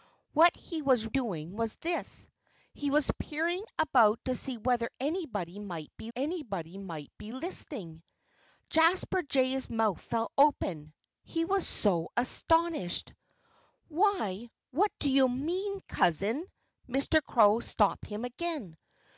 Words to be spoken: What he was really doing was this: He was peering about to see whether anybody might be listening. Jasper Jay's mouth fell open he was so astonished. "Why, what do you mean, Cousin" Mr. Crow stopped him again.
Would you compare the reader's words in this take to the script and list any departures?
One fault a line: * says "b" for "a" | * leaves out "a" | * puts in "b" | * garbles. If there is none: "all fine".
* leaves out "really"
* puts in "anybody might be"